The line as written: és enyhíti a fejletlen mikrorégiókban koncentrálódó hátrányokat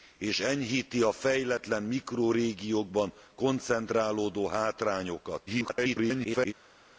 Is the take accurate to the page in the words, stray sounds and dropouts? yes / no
no